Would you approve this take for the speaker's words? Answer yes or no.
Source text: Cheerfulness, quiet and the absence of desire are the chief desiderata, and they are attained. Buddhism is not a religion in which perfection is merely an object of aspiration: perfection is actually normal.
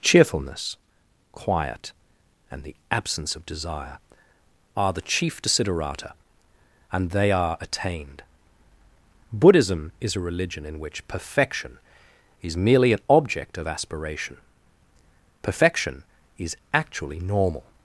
no